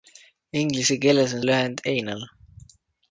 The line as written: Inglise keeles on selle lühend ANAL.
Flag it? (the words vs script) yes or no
yes